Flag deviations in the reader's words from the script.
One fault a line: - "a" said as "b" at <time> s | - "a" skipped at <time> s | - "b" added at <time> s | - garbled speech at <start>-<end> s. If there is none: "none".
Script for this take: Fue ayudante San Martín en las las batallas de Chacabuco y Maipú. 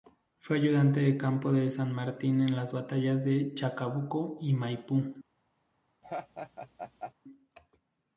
- "de campo de" added at 1.0 s
- "las" skipped at 2.7 s